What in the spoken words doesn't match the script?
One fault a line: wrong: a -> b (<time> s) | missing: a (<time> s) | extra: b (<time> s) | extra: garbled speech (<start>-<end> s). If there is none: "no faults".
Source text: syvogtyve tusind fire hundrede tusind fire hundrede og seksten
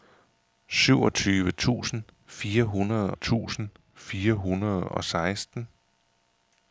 no faults